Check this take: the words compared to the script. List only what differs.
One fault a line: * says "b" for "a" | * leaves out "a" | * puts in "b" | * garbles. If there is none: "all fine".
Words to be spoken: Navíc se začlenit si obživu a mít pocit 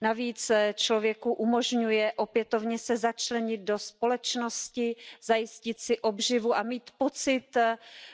* puts in "člověku umožňuje opětovně"
* puts in "do společnosti zajistit"